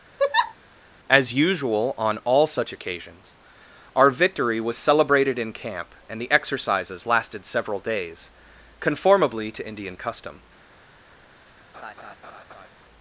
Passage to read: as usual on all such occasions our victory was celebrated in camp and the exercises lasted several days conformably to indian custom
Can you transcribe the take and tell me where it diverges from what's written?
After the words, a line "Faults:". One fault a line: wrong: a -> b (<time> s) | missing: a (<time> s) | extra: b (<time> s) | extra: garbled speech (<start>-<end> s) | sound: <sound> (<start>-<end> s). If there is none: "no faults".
as usual on all such occasions our victory was celebrated in camp and the exercises lasted several days conformably to indian custom
Faults:
sound: laugh (0.2-0.5 s)
sound: laugh (11.7-12.7 s)